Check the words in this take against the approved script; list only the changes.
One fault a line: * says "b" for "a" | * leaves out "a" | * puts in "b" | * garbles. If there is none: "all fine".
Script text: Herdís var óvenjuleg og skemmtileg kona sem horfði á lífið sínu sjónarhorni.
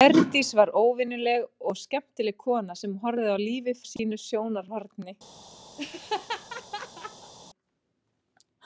all fine